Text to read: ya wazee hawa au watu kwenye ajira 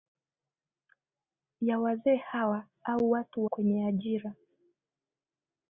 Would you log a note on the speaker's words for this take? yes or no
no